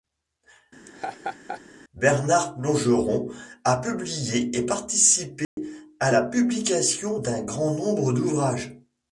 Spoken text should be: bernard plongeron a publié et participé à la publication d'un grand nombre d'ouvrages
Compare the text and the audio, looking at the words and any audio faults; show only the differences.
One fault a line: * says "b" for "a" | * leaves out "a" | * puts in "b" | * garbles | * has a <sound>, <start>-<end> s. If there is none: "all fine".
* has a laugh, 0.9-1.6 s
* has a dropout, 5.4-5.6 s